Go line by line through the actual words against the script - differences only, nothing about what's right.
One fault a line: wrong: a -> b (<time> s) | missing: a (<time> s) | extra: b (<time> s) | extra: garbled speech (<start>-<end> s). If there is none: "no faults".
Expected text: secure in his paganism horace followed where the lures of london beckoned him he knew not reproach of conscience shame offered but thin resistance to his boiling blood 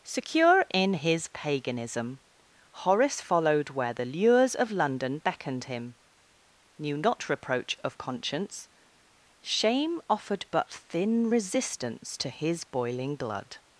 missing: he (6.0 s)